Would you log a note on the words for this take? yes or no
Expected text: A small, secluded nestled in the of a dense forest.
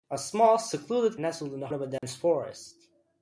no